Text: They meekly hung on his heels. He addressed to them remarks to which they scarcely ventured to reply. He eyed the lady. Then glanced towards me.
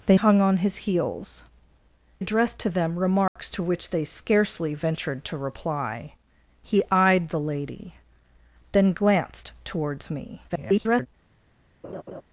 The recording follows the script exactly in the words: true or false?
false